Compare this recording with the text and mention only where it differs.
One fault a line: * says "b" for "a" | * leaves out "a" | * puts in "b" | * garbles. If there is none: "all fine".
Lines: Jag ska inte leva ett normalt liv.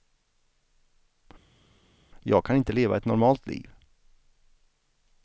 * says "kan" for "ska"